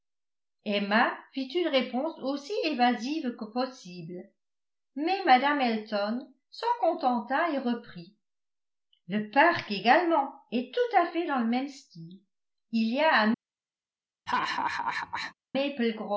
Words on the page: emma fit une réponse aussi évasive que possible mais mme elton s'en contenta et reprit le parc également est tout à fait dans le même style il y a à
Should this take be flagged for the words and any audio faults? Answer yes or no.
yes